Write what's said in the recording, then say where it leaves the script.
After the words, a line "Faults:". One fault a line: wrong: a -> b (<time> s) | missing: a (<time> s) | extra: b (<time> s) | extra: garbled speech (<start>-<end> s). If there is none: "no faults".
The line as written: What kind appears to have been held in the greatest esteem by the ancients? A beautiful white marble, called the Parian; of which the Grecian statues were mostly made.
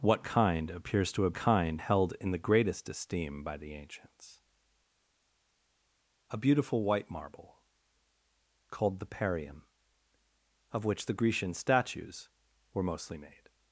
What kind appears to have kind held in the greatest esteem by the ancients? A beautiful white marble, called the Parian; of which the Grecian statues were mostly made.
Faults:
wrong: been -> kind (1.3 s)